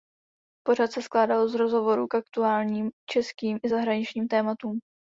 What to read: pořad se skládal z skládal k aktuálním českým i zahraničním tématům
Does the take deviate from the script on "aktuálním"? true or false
false